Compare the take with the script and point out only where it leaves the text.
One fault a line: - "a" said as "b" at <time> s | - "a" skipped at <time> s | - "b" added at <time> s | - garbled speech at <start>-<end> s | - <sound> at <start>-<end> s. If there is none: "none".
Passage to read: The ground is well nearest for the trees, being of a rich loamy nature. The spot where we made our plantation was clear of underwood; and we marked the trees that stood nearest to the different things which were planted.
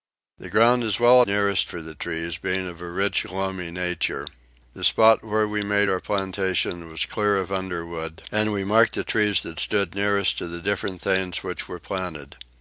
none